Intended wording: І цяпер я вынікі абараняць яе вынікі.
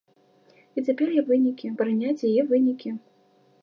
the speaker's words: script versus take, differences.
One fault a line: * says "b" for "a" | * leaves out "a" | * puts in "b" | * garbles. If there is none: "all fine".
all fine